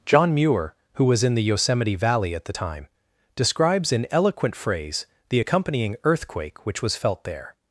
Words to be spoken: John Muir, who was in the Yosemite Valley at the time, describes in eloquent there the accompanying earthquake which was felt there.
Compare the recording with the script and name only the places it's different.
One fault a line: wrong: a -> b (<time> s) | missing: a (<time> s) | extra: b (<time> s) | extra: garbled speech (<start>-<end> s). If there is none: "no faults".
wrong: there -> phrase (4.5 s)